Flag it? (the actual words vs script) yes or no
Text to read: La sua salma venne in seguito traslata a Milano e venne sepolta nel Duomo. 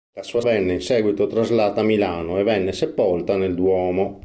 yes